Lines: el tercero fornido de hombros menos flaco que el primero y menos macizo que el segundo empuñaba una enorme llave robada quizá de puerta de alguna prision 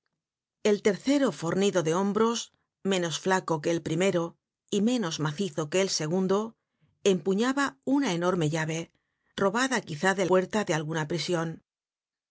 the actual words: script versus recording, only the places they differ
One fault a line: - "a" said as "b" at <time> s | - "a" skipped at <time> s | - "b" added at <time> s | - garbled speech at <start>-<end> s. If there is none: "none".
none